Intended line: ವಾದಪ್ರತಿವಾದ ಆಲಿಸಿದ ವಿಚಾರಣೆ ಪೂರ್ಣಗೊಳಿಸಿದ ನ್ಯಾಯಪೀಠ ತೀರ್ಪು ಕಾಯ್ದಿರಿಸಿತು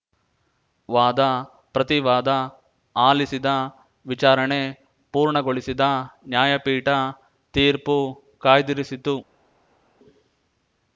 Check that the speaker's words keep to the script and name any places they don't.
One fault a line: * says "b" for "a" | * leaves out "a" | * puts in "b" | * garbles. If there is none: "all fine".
all fine